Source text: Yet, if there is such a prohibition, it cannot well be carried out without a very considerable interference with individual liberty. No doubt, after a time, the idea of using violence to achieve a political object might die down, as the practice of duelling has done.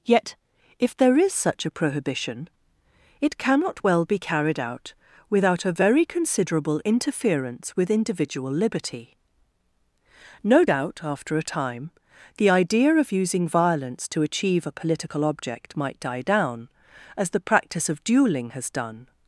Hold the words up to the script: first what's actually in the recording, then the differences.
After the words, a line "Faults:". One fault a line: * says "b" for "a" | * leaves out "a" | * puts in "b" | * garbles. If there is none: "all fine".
Yet, if there is such a prohibition, it cannot well be carried out without a very considerable interference with individual liberty. No doubt, after a time, the idea of using violence to achieve a political object might die down, as the practice of duelling has done.
Faults:
all fine